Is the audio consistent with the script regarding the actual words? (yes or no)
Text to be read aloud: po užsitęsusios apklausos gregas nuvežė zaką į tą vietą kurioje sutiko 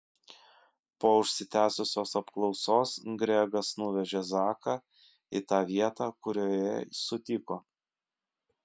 yes